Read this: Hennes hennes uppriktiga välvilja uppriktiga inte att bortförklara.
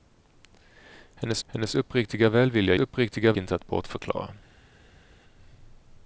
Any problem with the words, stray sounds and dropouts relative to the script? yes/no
no